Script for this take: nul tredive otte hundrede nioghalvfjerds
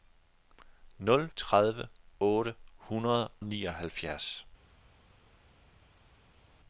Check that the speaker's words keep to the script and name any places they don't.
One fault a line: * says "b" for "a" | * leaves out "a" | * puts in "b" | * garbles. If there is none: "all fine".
all fine